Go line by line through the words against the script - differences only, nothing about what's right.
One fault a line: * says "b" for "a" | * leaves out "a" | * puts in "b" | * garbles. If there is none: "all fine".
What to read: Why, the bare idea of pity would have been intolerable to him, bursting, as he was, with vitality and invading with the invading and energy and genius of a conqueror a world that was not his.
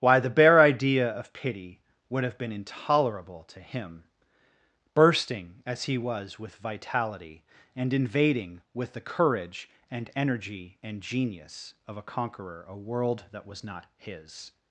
* says "courage" for "invading"